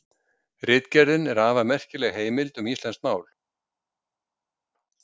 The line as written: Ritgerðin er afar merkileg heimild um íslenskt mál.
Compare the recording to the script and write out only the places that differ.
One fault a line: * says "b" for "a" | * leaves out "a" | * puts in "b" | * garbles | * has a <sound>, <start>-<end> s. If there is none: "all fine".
all fine